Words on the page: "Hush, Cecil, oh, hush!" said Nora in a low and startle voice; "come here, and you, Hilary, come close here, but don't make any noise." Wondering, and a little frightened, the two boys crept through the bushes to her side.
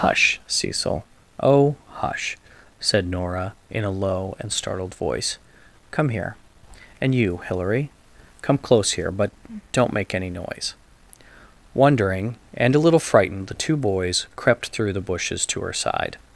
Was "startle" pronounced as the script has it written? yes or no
no